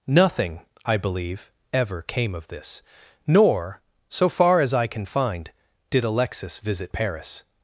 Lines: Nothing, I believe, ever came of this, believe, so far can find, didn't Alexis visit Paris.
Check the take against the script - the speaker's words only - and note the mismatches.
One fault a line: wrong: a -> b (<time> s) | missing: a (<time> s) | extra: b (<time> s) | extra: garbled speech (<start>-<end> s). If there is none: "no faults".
wrong: believe -> nor (3.3 s)
extra: as I (4.6 s)
wrong: didn't -> did (5.9 s)